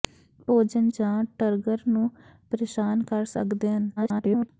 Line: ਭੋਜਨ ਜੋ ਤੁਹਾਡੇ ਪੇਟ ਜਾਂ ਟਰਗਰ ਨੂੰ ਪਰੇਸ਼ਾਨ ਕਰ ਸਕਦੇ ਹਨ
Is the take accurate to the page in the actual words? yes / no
no